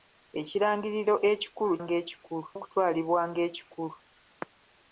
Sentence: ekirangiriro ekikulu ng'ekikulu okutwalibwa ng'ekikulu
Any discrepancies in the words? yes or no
no